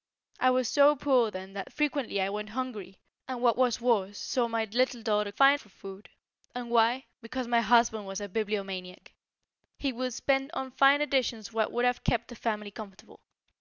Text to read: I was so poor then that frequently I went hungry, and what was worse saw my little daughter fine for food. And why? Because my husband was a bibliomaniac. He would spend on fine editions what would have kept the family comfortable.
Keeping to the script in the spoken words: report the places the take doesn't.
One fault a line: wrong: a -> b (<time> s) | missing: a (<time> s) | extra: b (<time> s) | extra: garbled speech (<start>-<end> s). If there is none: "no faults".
no faults